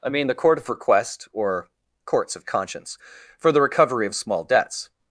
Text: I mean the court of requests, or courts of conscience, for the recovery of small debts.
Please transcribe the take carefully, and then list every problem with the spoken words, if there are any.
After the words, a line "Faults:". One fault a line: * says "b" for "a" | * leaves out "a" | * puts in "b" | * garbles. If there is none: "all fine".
I mean the court of request, or courts of conscience, for the recovery of small debts.
Faults:
* says "request" for "requests"